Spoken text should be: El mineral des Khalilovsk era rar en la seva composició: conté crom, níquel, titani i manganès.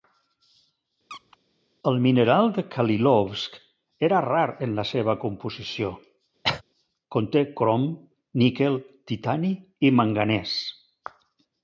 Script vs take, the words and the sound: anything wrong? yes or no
yes